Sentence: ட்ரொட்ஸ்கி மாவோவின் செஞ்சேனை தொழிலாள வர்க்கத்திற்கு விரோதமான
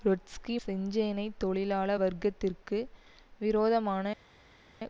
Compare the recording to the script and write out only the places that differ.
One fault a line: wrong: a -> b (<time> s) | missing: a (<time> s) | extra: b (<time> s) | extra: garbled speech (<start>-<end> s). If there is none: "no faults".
missing: மாவோவின் (0.6 s)